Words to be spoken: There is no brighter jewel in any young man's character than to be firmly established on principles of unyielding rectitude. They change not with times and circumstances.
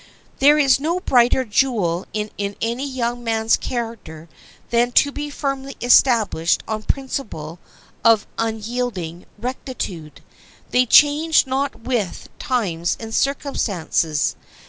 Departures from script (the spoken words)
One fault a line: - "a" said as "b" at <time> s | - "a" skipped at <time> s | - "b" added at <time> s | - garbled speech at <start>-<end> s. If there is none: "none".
- "in" added at 2.4 s